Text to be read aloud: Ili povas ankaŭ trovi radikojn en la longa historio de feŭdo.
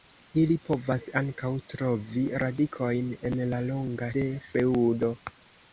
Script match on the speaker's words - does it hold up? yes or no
no